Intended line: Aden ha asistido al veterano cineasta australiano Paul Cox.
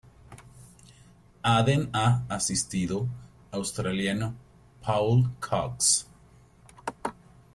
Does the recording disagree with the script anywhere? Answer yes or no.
yes